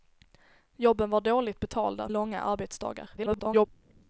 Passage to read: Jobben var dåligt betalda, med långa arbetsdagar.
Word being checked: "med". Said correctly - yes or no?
no